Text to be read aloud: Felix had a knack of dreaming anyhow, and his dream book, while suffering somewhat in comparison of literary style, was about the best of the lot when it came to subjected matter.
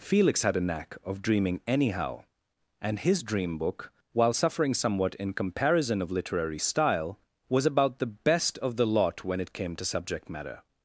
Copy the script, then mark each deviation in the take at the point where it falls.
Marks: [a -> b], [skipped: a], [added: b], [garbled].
Felix had a knack of dreaming anyhow, and his dream book, while suffering somewhat in comparison of literary style, was about the best of the lot when it came to [subjected -> subject] matter.